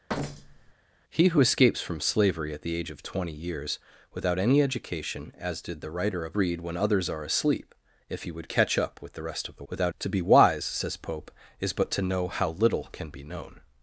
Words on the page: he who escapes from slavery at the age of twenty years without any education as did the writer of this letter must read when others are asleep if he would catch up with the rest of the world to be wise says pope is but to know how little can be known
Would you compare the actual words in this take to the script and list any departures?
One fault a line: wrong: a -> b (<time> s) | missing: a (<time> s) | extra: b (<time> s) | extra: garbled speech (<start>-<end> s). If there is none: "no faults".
missing: this letter must (6.4 s)
wrong: world -> without (9.7 s)